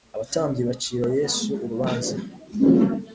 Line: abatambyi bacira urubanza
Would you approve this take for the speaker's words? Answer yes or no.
no